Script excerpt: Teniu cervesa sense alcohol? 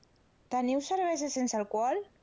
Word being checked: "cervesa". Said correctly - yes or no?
yes